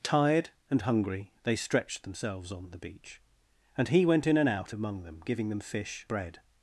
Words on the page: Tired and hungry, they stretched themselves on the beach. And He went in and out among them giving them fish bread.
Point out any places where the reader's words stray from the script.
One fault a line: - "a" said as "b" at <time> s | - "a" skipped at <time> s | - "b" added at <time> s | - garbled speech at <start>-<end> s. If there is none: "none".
none